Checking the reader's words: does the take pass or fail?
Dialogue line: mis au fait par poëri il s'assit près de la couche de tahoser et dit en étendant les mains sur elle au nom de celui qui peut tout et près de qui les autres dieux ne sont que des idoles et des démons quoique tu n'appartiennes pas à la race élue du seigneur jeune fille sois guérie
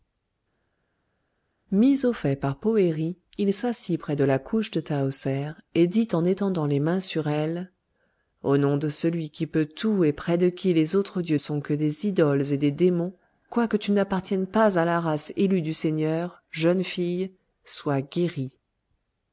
fail